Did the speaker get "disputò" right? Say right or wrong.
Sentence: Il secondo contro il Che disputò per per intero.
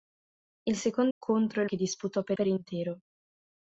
right